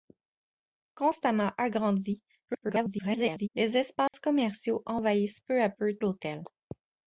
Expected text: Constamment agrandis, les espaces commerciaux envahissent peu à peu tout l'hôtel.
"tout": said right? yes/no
no